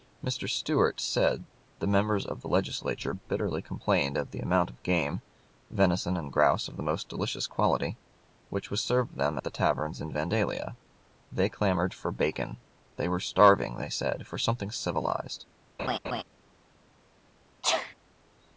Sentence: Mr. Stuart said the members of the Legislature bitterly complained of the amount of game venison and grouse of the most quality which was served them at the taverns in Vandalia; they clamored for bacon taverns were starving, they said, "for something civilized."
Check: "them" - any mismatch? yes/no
no